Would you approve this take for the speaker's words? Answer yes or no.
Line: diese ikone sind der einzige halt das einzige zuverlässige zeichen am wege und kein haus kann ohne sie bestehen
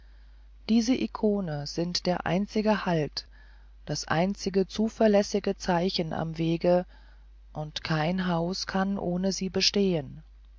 yes